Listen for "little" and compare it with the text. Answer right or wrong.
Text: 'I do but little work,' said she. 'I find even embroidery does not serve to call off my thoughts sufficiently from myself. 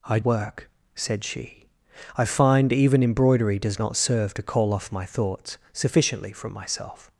wrong